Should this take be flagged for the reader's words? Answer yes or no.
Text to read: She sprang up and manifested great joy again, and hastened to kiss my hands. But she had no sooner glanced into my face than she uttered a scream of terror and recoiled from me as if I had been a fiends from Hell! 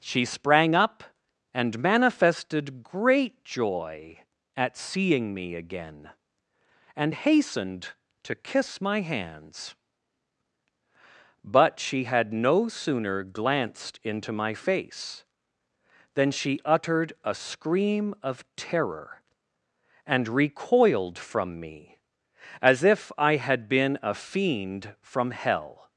yes